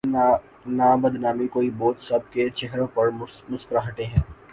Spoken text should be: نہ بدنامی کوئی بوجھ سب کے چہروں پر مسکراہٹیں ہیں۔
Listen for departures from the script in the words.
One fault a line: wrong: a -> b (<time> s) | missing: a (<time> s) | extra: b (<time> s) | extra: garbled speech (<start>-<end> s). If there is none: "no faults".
no faults